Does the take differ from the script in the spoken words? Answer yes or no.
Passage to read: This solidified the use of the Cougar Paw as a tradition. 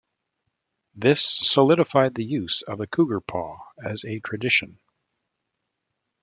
no